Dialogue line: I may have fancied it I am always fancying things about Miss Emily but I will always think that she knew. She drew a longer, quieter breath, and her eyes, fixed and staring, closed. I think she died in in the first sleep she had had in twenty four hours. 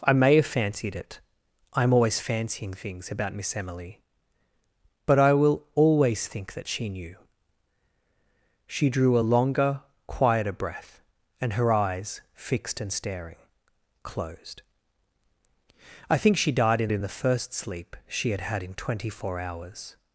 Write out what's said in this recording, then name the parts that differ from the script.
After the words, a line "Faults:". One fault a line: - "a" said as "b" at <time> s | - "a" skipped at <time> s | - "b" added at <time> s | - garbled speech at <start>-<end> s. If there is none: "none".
I may have fancied it I am always fancying things about Miss Emily but I will always think that she knew. She drew a longer, quieter breath, and her eyes, fixed and staring, closed. I think she died in in the first sleep she had had in twenty four hours.
Faults:
none